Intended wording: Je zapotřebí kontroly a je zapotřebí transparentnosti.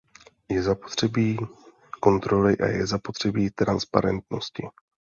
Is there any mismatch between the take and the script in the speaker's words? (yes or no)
no